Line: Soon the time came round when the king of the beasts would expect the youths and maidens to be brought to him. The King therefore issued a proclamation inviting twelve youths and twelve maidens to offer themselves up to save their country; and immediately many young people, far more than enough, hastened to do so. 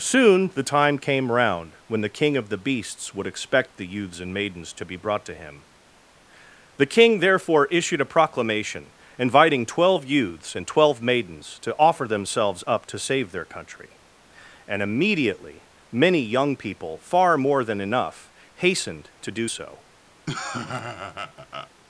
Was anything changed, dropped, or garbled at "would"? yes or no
no